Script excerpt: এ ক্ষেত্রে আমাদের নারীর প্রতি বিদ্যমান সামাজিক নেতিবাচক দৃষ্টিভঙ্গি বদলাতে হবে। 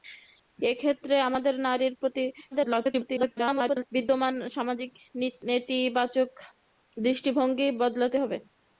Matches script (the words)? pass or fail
fail